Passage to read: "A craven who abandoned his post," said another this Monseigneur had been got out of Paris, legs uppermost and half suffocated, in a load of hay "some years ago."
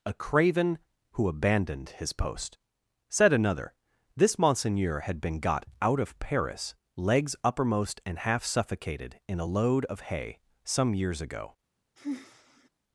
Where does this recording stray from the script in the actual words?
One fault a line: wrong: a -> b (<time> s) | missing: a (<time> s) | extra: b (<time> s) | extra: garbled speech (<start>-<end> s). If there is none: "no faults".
no faults